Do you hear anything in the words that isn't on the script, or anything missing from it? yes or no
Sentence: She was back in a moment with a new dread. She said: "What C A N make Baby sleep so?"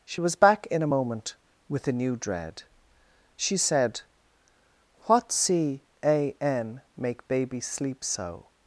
no